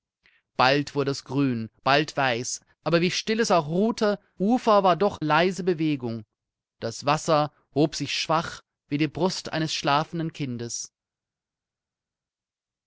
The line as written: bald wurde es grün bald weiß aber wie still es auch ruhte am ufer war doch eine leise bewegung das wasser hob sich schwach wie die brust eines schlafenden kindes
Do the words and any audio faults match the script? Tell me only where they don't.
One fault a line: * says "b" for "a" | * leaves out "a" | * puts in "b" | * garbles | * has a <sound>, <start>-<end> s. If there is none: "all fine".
* leaves out "am"
* leaves out "eine"